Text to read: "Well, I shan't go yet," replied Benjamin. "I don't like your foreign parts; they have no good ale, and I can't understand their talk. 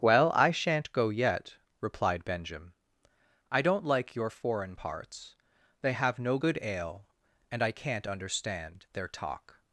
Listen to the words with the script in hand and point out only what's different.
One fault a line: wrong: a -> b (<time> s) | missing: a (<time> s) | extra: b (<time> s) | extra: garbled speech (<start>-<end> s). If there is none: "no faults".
no faults